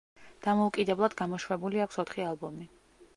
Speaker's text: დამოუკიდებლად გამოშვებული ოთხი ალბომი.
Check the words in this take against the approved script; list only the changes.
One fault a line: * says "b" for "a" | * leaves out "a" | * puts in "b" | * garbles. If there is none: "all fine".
* puts in "აქვს"